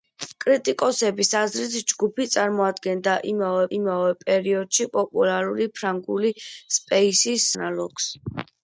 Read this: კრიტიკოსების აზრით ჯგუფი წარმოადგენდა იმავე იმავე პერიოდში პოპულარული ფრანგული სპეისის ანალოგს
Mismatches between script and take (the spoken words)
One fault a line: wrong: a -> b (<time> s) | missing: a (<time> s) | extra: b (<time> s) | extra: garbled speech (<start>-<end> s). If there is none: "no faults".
no faults